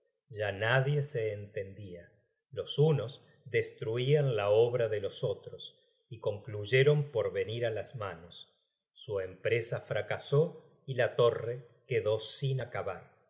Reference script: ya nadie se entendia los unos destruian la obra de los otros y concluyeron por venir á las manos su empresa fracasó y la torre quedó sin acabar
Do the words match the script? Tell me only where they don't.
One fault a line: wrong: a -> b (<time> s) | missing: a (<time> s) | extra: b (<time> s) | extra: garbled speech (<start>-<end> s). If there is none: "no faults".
no faults